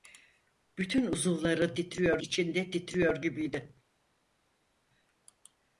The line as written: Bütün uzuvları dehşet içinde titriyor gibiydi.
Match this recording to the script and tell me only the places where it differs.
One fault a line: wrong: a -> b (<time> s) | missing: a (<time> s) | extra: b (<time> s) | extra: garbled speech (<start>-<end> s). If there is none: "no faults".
wrong: dehşet -> titriyor (1.7 s)